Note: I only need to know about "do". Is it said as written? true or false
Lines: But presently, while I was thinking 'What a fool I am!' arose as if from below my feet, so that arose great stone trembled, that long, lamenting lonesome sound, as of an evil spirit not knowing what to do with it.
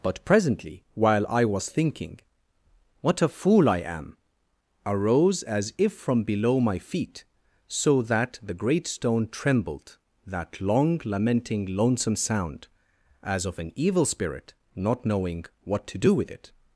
true